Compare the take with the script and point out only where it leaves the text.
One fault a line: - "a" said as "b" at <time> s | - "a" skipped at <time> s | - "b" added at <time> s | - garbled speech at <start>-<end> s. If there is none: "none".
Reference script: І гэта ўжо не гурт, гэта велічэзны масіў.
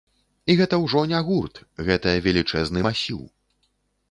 none